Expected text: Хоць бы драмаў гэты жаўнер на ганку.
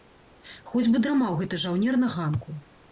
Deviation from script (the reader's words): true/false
false